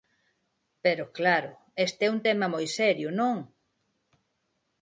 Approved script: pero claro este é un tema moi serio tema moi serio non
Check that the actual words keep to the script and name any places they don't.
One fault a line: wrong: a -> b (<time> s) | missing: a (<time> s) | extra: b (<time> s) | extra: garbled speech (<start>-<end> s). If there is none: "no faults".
missing: tema moi serio (3.1 s)